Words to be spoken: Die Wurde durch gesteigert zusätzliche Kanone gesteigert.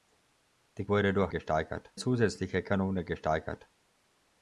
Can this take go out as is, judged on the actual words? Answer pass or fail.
pass